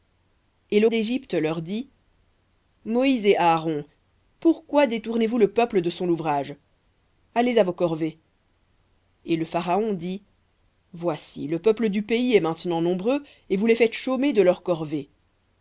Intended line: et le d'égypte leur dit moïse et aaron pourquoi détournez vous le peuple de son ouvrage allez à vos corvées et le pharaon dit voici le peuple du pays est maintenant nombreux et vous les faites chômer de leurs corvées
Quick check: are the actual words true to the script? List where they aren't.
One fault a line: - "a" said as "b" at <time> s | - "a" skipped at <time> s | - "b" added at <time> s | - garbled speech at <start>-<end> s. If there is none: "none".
none